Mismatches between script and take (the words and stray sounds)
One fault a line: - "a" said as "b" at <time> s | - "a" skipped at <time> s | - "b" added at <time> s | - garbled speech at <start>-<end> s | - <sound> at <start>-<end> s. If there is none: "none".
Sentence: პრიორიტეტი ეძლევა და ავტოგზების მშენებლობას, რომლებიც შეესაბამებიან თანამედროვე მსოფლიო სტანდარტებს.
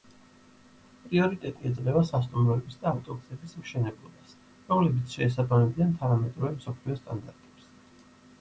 - "სასტუმროების" added at 2.1 s